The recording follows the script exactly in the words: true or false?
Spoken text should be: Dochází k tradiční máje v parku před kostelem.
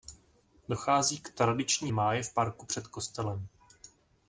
true